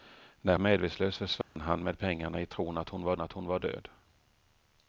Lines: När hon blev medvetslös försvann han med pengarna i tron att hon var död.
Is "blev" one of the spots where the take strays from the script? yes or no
yes